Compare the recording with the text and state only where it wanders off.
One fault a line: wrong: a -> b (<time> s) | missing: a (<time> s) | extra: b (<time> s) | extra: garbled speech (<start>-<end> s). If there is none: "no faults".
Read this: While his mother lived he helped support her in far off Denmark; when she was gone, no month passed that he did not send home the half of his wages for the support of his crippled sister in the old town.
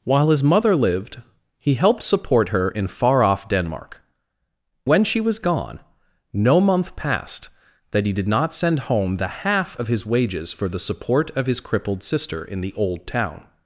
no faults